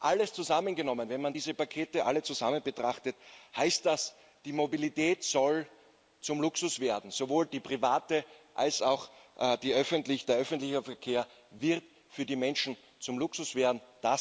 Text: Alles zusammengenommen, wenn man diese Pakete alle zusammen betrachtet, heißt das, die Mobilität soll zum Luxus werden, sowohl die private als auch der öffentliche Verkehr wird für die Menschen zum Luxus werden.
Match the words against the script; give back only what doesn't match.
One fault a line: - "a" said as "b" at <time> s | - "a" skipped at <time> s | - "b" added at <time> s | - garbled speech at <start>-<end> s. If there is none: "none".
none